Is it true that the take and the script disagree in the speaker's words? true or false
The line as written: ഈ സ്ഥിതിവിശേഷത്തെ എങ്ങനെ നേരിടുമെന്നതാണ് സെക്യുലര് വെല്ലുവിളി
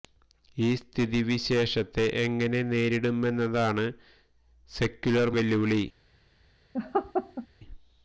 false